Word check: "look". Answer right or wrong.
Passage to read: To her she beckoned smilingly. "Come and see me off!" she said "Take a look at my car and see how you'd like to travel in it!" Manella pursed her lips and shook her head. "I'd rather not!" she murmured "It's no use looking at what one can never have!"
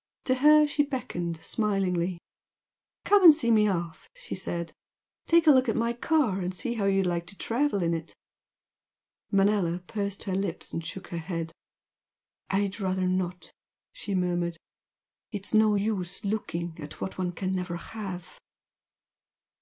right